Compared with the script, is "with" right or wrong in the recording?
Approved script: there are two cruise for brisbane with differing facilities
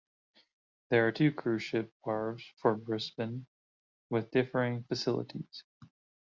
right